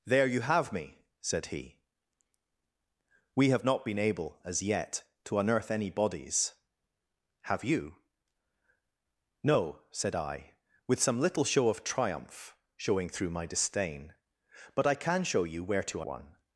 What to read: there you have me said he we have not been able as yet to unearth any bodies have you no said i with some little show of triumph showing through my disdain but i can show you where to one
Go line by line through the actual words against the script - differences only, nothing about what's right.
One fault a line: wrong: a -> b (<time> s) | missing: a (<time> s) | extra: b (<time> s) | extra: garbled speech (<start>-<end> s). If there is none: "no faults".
no faults